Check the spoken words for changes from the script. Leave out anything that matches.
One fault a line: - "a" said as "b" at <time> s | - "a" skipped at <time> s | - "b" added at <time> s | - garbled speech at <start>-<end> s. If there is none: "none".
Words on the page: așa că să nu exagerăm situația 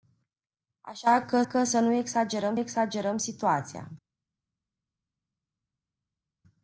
- "că" added at 1.4 s
- "exagerăm" added at 2.5 s